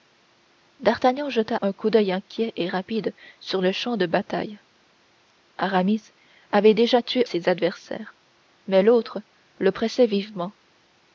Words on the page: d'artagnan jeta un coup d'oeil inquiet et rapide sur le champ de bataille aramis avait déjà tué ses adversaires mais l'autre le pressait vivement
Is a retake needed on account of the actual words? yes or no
no